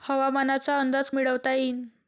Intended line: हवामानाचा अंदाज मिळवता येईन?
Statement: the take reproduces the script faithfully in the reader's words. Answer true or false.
true